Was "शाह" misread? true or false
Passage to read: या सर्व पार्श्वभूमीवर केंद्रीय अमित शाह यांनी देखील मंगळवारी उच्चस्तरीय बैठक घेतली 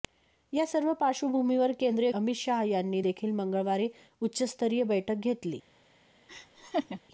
false